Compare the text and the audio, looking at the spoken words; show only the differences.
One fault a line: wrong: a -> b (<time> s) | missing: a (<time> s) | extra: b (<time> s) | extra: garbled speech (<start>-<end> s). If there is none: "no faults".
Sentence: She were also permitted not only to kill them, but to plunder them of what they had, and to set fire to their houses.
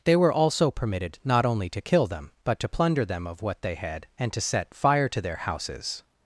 wrong: She -> They (0.0 s)